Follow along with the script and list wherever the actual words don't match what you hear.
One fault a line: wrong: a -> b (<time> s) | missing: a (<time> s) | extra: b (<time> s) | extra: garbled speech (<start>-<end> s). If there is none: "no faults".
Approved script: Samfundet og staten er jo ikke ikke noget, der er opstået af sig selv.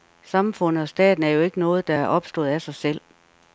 missing: ikke (1.6 s)